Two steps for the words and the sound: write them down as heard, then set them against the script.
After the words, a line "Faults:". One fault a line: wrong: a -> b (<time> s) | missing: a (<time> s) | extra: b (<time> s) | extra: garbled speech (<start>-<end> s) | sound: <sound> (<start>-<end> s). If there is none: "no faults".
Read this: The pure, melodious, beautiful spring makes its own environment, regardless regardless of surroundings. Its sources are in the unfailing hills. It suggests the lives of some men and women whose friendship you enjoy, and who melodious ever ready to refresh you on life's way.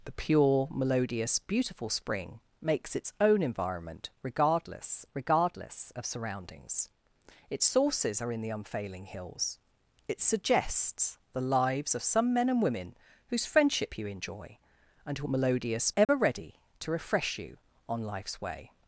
The pure, melodious, beautiful spring makes its own environment, regardless regardless of surroundings. Its sources are in the unfailing hills. It suggests the lives of some men and women whose friendship you enjoy, and who melodious ever ready to refresh you on life's way.
Faults:
sound: dropout (16.0-16.1 s)